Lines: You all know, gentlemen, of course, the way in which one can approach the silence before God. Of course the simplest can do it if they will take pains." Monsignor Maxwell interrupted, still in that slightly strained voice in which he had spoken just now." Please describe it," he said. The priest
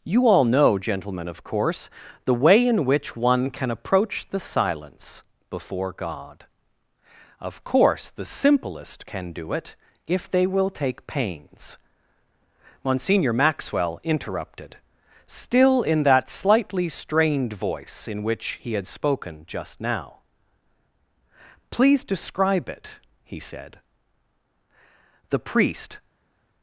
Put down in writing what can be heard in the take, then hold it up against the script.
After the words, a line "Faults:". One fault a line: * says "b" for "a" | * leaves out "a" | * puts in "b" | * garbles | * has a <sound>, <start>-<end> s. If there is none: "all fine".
You all know, gentlemen, of course, the way in which one can approach the silence before God. Of course the simplest can do it if they will take pains." Monsignor Maxwell interrupted, still in that slightly strained voice in which he had spoken just now." Please describe it," he said. The priest
Faults:
all fine